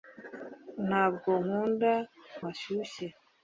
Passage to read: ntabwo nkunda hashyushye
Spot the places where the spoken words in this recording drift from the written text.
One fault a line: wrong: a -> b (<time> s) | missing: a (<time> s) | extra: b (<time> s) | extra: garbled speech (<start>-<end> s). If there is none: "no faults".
no faults